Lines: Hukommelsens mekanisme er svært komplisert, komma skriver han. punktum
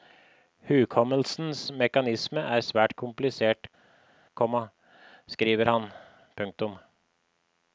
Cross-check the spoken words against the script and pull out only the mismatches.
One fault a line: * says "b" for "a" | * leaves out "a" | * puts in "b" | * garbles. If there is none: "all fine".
all fine